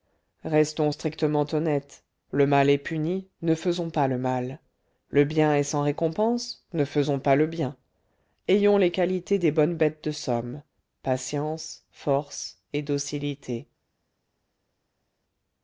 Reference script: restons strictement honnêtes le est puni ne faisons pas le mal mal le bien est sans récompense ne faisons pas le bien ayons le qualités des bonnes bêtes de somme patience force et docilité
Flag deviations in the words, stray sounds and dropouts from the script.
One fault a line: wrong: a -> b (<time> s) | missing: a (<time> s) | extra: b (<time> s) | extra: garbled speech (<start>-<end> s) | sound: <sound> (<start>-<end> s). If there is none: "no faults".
extra: mal (2.5 s)
missing: mal (4.6 s)
wrong: le -> les (8.8 s)